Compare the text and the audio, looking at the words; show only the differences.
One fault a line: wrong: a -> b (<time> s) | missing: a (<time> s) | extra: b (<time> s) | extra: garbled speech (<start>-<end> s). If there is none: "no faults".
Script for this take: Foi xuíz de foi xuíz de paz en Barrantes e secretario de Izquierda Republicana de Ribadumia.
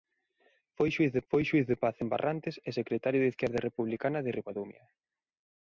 no faults